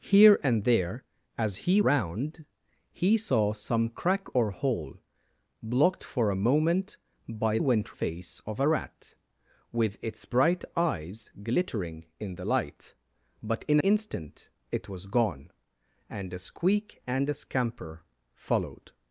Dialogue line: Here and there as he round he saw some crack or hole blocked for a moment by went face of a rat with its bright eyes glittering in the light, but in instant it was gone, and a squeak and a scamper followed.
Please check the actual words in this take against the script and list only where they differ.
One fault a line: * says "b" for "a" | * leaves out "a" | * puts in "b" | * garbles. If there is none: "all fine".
all fine